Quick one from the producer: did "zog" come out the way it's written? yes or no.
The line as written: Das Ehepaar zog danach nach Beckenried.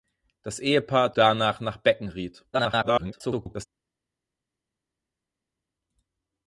no